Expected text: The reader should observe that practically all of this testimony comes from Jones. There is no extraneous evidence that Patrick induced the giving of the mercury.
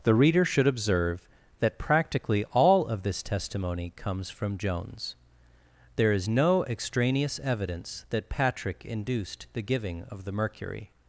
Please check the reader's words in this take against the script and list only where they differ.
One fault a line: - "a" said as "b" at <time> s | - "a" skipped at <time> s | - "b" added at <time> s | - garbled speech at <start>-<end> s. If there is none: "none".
none